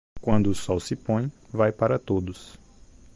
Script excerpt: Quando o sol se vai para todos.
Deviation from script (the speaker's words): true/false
true